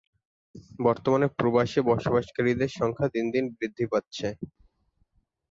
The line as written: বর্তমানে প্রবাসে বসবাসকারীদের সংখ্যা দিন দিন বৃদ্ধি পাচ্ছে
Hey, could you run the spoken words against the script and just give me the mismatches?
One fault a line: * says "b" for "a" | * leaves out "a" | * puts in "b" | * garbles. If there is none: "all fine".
all fine